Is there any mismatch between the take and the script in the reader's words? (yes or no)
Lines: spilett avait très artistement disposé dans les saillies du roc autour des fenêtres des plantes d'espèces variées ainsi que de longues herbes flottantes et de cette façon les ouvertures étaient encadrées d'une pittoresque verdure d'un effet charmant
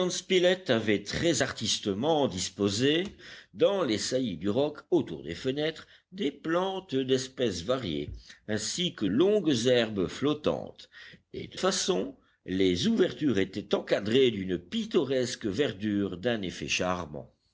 yes